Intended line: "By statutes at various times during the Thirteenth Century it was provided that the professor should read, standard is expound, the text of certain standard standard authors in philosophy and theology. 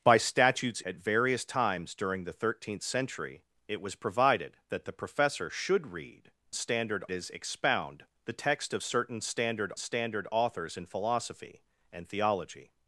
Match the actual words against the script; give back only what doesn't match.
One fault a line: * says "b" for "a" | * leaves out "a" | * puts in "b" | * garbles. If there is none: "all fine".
all fine